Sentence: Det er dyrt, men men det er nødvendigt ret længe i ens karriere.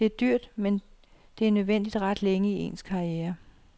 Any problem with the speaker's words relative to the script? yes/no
yes